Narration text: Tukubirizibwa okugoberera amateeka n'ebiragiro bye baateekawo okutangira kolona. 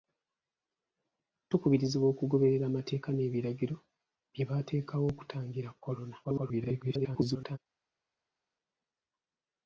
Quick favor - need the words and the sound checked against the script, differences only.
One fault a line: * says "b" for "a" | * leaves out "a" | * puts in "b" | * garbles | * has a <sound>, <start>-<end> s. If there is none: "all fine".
* garbles